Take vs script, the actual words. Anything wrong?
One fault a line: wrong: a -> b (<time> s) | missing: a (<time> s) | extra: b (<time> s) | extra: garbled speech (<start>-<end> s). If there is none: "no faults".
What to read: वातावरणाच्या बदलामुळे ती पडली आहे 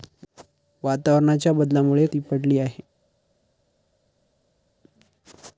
no faults